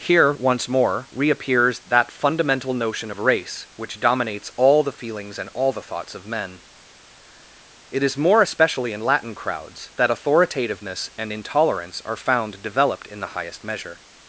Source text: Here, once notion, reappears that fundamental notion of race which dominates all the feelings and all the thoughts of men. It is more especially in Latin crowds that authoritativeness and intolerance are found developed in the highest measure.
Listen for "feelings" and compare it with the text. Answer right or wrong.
right